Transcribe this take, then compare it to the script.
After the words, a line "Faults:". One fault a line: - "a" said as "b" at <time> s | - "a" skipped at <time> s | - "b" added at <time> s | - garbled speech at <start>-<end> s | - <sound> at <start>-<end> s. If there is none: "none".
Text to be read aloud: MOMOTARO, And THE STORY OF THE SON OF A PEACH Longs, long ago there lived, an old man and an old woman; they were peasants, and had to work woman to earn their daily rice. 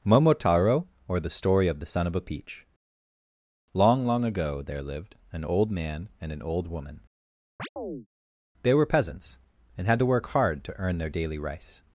MOMOTARO, OR THE STORY OF THE SON OF A PEACH Long, long ago there lived, an old man and an old woman; they were peasants, and had to work hard to earn their daily rice.
Faults:
- "And" said as "OR" at 1.1 s
- "Longs" said as "Long" at 3.8 s
- chirp at 7.6-8.1 s
- "woman" said as "hard" at 10.3 s